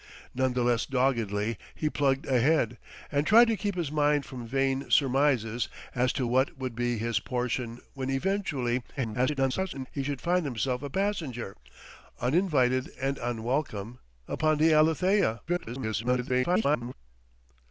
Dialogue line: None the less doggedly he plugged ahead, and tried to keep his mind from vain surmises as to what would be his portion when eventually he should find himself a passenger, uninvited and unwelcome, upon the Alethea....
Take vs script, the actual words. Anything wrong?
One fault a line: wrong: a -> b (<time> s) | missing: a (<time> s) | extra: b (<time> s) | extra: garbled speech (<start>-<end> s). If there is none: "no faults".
extra: garbled speech (9.0-9.9 s)
extra: garbled speech (15.5-16.9 s)